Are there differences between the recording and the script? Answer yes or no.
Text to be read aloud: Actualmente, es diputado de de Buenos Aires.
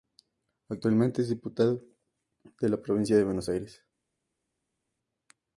yes